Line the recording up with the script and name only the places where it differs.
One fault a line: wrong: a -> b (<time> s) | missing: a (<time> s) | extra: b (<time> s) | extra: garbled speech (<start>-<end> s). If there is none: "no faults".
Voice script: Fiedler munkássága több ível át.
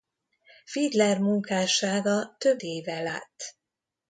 no faults